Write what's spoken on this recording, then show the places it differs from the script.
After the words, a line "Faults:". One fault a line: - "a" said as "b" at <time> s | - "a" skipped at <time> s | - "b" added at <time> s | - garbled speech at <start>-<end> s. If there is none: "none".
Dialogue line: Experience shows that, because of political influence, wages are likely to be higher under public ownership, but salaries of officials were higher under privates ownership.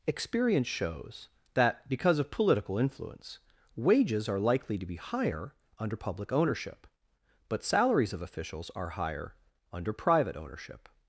Experience shows that, because of political influence, wages are likely to be higher under public ownership, but salaries of officials are higher under private ownership.
Faults:
- "were" said as "are" at 8.8 s
- "privates" said as "private" at 9.9 s